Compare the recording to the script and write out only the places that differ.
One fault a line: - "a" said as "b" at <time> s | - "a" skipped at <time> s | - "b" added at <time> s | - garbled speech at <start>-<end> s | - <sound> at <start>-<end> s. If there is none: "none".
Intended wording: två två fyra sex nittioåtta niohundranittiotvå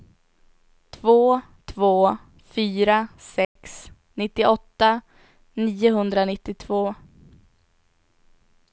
- dropout at 3.4-3.6 s